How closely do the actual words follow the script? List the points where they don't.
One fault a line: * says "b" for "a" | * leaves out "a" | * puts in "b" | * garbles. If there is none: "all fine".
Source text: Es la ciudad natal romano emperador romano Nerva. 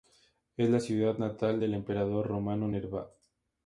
* says "del" for "romano"